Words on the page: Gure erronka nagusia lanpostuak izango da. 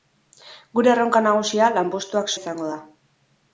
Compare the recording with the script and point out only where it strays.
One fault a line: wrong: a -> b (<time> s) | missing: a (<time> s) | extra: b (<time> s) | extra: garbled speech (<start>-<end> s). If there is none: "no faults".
no faults